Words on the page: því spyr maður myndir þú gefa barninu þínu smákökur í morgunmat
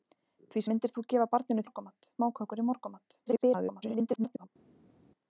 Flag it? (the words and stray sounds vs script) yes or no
yes